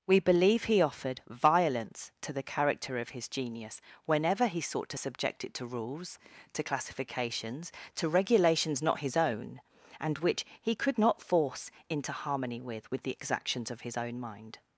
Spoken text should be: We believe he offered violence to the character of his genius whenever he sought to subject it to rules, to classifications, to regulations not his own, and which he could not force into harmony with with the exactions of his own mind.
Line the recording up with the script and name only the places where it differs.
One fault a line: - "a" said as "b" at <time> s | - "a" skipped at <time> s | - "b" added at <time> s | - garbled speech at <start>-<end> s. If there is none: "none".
none